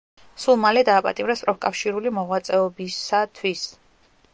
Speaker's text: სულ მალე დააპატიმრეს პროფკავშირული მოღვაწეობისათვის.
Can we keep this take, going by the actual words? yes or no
yes